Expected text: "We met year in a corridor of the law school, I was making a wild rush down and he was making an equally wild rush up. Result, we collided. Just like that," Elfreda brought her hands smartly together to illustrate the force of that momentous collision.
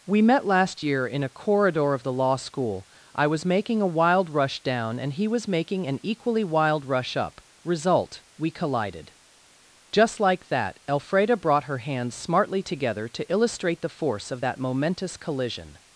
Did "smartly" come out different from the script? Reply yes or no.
no